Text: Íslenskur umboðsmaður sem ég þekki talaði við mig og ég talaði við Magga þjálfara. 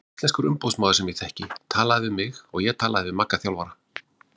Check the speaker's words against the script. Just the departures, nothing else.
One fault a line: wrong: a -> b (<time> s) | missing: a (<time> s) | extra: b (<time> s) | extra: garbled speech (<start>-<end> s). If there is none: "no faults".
no faults